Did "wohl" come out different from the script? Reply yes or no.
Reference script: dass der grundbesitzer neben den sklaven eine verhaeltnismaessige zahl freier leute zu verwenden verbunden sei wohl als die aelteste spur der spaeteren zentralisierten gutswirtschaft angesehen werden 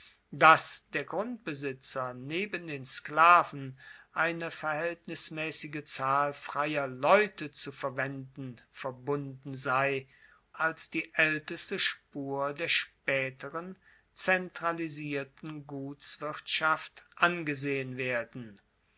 yes